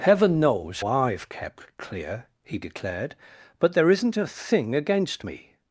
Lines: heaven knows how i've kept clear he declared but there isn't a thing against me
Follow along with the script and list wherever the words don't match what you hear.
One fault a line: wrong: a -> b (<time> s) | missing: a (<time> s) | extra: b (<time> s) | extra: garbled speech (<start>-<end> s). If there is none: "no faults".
missing: how (0.8 s)